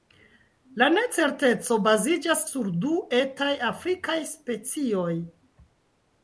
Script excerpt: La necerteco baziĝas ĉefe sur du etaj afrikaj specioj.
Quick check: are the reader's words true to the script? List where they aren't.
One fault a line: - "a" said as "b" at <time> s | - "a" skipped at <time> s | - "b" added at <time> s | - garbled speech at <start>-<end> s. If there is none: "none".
- "ĉefe" skipped at 2.4 s